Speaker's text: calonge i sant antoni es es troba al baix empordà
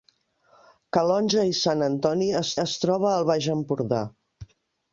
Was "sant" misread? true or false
false